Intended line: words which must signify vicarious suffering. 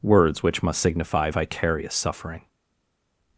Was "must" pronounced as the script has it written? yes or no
yes